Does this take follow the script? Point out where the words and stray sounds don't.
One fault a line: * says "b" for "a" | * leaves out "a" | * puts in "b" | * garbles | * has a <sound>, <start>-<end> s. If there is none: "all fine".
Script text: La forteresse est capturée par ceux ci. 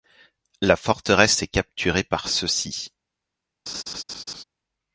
* has a laugh, 3.7-4.4 s